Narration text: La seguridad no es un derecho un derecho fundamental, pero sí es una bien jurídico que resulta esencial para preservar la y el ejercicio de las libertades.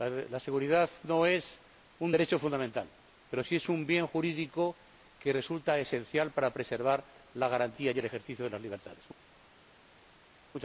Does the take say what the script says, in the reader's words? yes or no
no